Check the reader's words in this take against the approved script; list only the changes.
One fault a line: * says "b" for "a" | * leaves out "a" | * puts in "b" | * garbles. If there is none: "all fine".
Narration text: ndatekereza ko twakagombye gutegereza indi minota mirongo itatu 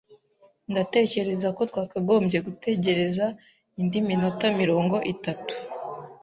all fine